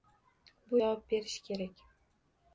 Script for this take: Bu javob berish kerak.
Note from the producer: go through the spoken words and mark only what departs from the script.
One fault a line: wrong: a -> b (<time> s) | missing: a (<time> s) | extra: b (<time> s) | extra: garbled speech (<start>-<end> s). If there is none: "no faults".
no faults